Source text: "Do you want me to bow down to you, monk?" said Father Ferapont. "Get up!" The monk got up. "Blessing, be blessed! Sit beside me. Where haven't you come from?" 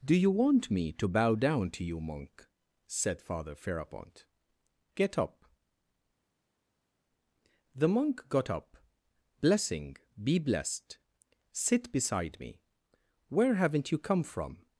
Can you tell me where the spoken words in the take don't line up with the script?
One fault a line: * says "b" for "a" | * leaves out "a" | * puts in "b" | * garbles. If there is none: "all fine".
all fine